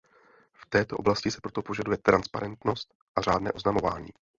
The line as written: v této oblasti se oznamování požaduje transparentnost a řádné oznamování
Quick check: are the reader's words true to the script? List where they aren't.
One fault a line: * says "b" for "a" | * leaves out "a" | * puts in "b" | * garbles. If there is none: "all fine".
* says "proto" for "oznamování"